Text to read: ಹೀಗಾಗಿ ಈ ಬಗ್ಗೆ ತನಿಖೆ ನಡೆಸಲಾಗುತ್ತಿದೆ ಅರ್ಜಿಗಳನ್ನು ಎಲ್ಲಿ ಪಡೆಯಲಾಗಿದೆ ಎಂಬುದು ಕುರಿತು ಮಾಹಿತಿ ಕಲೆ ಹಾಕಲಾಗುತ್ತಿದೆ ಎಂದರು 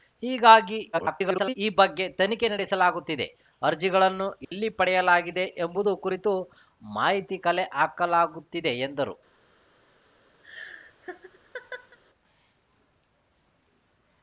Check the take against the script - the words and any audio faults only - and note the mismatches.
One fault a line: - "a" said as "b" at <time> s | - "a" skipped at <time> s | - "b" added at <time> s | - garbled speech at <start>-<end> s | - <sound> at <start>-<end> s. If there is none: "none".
- garbled speech at 0.9-1.5 s
- dropout at 4.4-4.5 s
- laugh at 10.4-12.0 s